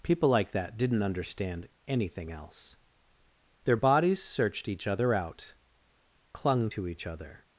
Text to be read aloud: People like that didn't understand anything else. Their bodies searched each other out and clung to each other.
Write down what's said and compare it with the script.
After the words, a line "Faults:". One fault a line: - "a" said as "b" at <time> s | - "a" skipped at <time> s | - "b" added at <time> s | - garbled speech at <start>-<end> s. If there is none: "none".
People like that didn't understand anything else. Their bodies searched each other out clung to each other.
Faults:
- "and" skipped at 5.5 s